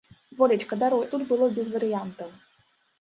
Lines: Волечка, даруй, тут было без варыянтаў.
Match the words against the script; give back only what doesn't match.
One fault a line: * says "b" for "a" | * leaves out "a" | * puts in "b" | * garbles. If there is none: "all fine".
all fine